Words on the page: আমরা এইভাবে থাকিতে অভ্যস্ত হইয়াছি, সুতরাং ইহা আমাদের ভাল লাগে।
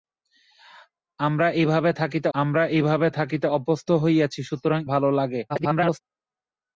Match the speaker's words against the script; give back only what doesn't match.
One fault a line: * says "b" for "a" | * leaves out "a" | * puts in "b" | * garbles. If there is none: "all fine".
* puts in "আমরা এইভাবে থাকিতে"
* leaves out "ইহা আমাদের"
* garbles